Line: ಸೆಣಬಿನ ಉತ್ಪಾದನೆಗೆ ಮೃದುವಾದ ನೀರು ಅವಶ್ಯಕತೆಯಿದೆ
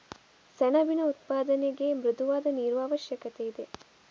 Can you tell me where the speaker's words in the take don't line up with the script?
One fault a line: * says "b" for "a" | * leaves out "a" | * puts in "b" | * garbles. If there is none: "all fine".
all fine